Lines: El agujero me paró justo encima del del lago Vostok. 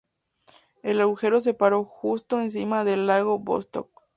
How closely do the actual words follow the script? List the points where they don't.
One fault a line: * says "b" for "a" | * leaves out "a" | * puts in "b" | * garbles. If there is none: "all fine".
* says "se" for "me"
* leaves out "del"